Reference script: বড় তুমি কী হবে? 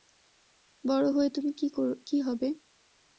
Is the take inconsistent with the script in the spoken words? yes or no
yes